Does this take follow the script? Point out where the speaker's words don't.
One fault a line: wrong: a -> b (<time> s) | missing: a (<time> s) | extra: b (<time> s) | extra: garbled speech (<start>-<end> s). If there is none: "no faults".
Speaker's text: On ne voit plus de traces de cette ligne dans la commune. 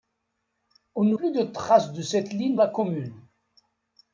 missing: voit (1.1 s)
missing: dans (2.6 s)